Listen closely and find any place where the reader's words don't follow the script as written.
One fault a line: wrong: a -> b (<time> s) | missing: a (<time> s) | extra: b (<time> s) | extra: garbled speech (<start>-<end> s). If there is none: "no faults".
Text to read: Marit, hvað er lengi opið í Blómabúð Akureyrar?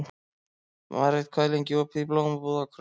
no faults